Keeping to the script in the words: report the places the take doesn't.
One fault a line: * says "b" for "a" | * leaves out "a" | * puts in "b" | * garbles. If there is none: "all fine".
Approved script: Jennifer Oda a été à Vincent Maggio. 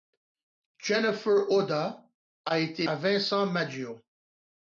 all fine